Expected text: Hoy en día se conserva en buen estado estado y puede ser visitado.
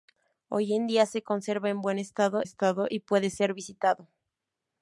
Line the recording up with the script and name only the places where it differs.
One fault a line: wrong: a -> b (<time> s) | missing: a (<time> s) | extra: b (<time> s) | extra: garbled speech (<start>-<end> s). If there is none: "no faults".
no faults